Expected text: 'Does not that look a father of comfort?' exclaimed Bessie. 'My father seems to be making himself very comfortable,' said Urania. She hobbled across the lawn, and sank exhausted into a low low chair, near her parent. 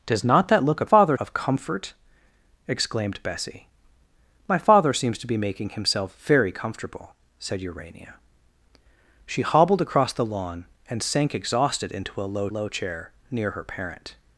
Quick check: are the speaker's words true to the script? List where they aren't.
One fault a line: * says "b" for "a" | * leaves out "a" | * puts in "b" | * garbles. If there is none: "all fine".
all fine